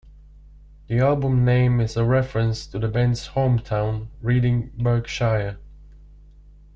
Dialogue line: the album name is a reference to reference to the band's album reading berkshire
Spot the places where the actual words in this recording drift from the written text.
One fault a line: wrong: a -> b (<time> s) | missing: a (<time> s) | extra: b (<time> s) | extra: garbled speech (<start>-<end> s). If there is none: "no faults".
missing: reference to (2.8 s)
wrong: album -> hometown (3.4 s)